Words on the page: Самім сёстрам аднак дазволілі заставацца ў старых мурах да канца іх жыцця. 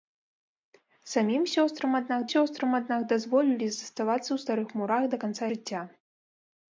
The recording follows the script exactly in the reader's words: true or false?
false